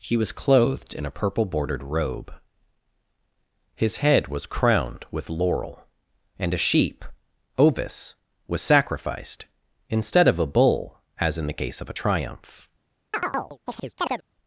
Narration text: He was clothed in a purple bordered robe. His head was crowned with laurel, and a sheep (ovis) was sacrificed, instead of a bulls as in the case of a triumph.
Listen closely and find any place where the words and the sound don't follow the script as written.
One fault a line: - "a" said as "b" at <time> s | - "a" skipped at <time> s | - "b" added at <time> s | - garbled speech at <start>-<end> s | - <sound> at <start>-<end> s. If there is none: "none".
- "bulls" said as "bull" at 10.5 s
- chirp at 13.1-14.2 s